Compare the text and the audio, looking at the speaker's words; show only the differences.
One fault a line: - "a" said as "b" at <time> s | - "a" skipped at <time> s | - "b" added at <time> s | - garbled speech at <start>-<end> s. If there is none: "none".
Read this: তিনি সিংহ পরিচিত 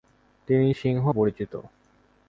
none